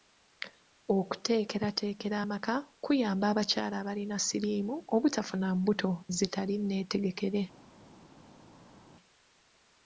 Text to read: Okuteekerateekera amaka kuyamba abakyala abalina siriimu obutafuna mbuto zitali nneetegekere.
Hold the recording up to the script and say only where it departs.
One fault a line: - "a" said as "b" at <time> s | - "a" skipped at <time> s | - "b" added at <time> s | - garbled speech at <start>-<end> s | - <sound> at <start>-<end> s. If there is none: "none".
none